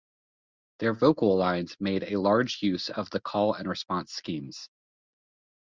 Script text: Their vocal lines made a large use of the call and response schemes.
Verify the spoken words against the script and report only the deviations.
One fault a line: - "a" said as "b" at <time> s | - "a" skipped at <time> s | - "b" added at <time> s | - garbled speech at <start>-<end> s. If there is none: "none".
none